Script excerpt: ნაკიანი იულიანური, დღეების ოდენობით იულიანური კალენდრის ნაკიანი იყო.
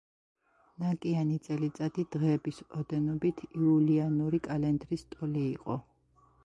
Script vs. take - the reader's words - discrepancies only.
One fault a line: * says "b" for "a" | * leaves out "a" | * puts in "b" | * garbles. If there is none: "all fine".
* says "წელიწადი" for "იულიანური"
* says "ტოლი" for "ნაკიანი"